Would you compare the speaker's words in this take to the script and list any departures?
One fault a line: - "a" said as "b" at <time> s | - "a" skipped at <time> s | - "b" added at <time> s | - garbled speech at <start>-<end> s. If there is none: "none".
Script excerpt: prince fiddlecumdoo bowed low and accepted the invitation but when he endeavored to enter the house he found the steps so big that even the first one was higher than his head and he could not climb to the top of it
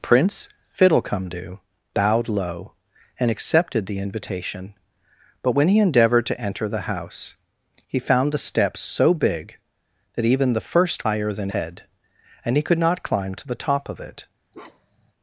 - "one was" skipped at 11.1 s
- "his" skipped at 11.5 s